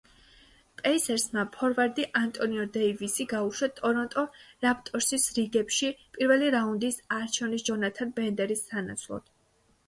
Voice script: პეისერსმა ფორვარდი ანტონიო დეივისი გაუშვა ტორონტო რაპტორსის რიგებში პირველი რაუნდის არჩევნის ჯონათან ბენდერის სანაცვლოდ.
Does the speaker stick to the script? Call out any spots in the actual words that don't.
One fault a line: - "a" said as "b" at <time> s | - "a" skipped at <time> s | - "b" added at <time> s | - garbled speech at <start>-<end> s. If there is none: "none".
none